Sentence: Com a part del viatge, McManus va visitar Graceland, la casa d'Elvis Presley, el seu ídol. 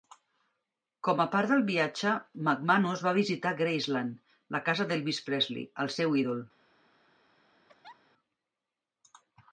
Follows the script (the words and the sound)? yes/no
no